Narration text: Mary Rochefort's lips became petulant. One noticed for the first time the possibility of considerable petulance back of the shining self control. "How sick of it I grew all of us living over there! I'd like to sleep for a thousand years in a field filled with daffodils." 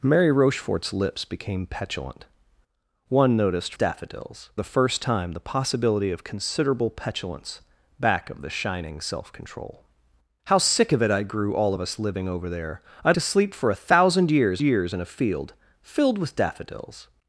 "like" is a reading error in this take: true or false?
true